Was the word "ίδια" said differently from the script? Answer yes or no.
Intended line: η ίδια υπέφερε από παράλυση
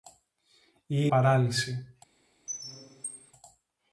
yes